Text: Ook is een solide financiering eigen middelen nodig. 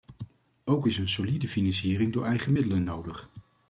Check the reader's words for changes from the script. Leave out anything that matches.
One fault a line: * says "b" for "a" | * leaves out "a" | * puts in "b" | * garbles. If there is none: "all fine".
* puts in "door"